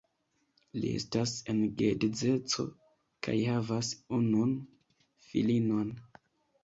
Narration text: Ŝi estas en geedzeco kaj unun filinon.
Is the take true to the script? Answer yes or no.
no